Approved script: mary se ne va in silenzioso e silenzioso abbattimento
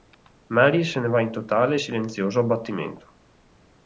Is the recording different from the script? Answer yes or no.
yes